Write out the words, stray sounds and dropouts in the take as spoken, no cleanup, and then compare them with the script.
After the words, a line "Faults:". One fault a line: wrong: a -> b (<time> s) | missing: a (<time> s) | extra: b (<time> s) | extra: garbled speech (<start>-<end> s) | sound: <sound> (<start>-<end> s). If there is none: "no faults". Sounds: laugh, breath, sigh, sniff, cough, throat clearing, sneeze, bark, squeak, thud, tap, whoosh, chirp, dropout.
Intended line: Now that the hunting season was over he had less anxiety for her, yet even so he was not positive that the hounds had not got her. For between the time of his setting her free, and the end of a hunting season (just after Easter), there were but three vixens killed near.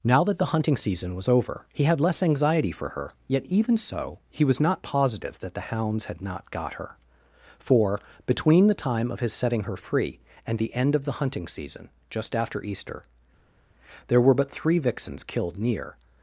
Now that the hunting season was over he had less anxiety for her, yet even so he was not positive that the hounds had not got her. For between the time of his setting her free, and the end of the hunting season (just after Easter), there were but three vixens killed near.
Faults:
wrong: a -> the (11.1 s)